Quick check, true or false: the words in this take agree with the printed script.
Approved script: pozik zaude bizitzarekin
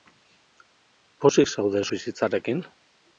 true